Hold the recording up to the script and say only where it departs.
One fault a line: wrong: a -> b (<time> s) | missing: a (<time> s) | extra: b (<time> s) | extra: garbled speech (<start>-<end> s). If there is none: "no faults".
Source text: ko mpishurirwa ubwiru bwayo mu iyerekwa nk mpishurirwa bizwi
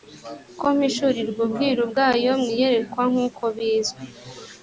wrong: mpishurirwa -> uko (3.3 s)